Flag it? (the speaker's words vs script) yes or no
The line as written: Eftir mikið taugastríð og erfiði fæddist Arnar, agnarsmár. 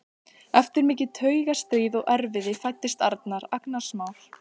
no